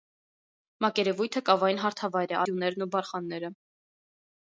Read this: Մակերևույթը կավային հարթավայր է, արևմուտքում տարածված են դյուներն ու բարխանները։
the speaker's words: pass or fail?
fail